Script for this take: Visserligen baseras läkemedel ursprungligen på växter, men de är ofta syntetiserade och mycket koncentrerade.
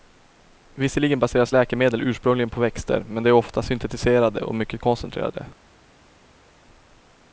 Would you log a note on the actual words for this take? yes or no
no